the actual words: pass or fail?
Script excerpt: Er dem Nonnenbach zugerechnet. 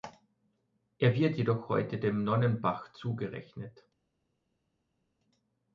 fail